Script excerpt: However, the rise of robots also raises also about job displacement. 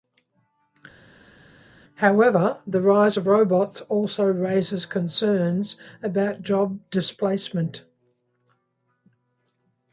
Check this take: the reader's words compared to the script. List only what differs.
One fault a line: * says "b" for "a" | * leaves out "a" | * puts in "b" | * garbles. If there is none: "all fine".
* says "concerns" for "also"